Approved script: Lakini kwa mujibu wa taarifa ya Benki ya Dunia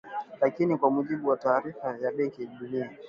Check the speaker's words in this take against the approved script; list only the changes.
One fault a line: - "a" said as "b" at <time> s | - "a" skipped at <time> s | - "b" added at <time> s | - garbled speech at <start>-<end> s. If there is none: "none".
none